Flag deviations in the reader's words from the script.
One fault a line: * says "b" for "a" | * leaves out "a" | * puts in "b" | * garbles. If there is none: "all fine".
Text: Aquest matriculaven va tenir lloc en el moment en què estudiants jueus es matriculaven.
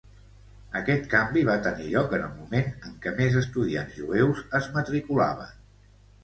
* says "canvi" for "matriculaven"
* puts in "més"